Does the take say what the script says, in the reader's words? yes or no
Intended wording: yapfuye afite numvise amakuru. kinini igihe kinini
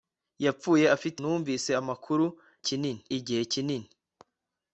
yes